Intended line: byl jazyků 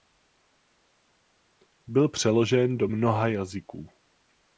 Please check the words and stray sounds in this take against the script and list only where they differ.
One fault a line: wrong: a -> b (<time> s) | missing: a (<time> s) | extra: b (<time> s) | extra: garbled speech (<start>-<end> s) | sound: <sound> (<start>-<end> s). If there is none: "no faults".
extra: přeložen do mnoha (2.1 s)